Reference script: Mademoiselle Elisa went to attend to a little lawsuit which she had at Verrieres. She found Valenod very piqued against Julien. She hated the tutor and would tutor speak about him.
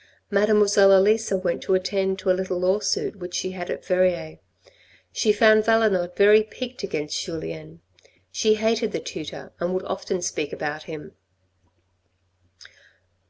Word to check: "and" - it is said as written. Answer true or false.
true